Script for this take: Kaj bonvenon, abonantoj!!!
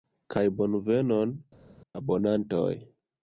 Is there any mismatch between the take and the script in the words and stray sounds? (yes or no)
no